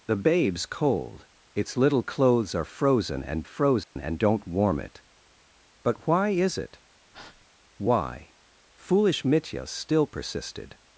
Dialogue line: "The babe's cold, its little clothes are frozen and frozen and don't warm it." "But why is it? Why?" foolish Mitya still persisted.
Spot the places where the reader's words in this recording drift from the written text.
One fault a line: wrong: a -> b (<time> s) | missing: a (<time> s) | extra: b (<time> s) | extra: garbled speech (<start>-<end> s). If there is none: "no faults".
no faults